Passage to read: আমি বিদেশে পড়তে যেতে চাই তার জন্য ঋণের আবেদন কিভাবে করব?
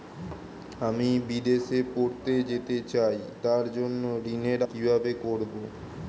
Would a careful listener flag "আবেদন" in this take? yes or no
yes